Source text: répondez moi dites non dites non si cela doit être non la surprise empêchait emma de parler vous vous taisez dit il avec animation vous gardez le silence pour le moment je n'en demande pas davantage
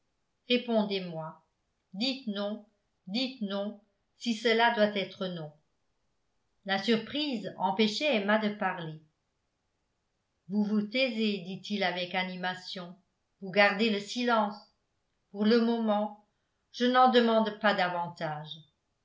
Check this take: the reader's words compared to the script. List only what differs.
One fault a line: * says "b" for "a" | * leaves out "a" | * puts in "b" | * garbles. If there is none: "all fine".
all fine